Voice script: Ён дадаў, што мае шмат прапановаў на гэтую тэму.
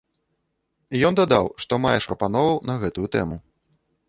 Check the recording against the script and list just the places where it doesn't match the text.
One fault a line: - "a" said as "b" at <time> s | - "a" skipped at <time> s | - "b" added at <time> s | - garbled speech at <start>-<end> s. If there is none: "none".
- "шмат" skipped at 1.9 s